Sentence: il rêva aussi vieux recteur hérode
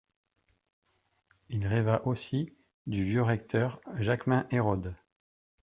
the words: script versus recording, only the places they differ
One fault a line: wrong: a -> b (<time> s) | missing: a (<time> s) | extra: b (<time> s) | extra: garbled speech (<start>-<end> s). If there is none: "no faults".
extra: du (2.9 s)
extra: jaquemin (4.0 s)